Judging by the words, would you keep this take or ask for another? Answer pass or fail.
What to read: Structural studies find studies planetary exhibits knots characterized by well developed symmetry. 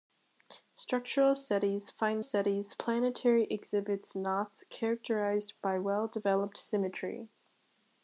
pass